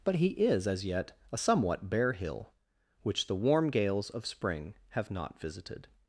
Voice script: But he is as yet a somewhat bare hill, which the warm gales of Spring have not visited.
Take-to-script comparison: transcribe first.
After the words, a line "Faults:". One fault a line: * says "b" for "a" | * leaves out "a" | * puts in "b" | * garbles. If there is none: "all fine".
But he is as yet a somewhat bare hill, which the warm gales of Spring have not visited.
Faults:
all fine